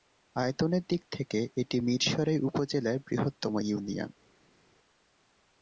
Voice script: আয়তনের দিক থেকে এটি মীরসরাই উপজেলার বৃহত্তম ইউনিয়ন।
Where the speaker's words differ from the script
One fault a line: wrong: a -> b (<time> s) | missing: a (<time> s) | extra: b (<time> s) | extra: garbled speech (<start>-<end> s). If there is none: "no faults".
no faults